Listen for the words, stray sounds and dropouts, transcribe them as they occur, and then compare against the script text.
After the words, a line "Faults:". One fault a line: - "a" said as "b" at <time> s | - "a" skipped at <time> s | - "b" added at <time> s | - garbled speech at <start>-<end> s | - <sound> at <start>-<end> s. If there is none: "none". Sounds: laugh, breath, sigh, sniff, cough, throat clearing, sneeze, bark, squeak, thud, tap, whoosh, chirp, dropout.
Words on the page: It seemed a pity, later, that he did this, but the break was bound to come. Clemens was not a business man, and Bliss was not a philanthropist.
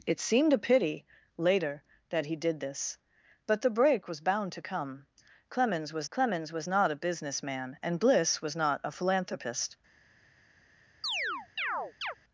It seemed a pity, later, that he did this, but the break was bound to come. Clemens was clemens was not a business man, and Bliss was not a philanthropist.
Faults:
- "clemens was" added at 6.1 s
- chirp at 11.0-12.1 s